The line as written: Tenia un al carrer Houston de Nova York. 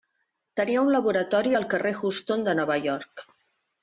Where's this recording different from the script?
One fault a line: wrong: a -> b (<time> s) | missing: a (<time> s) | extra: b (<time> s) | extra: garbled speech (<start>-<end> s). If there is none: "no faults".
extra: laboratori (0.9 s)